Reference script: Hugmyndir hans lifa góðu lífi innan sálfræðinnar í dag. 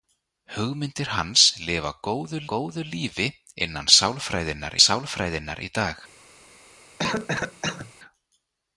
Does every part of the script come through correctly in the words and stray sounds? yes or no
no